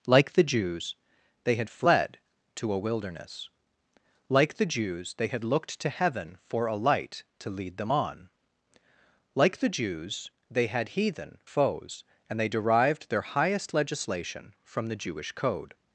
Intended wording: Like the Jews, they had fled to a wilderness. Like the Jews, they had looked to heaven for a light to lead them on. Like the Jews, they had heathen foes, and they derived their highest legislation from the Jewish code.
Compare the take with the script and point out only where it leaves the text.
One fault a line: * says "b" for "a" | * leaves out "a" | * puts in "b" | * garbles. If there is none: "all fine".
all fine